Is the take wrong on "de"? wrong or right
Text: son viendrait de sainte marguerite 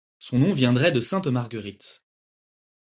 right